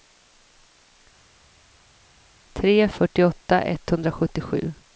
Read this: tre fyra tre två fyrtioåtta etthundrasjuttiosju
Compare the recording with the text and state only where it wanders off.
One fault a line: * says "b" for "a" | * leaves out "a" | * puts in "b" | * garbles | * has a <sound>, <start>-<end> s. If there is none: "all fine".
* leaves out "fyra tre två"